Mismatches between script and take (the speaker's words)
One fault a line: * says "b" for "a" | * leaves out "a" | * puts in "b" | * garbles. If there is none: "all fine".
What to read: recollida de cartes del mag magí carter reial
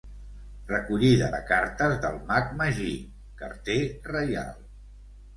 all fine